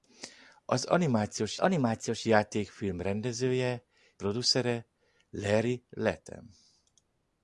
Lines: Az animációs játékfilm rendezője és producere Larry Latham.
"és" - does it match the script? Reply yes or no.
no